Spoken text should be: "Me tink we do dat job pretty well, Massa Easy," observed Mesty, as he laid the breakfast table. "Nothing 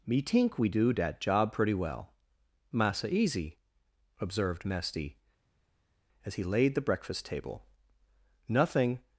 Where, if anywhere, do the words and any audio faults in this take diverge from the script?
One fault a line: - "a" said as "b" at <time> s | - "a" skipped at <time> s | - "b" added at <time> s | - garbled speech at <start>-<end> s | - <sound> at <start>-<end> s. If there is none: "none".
none